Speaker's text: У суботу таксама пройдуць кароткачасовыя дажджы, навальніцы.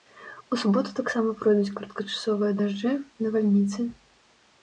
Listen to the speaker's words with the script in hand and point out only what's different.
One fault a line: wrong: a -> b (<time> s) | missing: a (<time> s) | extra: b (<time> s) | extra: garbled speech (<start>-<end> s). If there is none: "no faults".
no faults